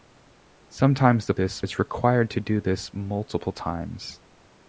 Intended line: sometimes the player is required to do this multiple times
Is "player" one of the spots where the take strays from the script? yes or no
yes